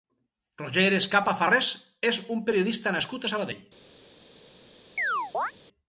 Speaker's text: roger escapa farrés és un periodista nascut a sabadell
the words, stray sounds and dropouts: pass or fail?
fail